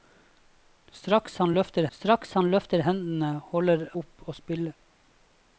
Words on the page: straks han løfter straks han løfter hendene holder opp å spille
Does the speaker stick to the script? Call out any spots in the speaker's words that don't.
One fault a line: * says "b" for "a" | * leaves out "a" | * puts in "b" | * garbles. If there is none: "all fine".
all fine